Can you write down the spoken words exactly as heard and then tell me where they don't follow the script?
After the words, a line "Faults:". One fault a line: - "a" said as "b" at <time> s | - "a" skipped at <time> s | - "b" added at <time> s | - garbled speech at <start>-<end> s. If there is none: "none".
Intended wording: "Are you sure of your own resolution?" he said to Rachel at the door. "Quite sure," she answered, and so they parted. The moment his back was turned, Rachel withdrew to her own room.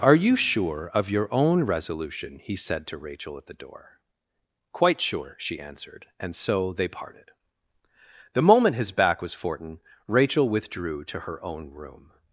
"Are you sure of your own resolution?" he said to Rachel at the door. "Quite sure," she answered, and so they parted. The moment his back was fortin, Rachel withdrew to her own room.
Faults:
- "turned" said as "fortin" at 9.3 s